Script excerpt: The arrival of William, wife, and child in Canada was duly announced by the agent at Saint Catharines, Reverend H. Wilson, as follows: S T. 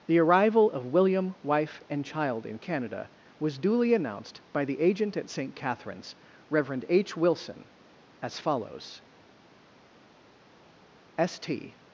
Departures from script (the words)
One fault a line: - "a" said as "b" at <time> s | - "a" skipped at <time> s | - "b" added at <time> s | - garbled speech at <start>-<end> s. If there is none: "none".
none